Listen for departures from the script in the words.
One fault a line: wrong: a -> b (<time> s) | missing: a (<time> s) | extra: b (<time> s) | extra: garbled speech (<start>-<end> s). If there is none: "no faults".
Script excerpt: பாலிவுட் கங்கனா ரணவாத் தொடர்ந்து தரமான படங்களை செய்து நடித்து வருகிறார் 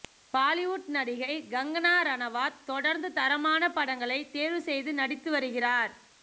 extra: நடிகை (0.9 s)
extra: தேர்வு (4.3 s)